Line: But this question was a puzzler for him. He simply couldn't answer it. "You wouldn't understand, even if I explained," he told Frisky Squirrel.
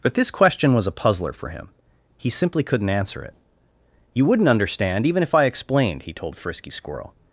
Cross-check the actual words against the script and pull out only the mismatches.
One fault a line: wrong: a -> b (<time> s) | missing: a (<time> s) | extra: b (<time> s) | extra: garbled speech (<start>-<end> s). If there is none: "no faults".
no faults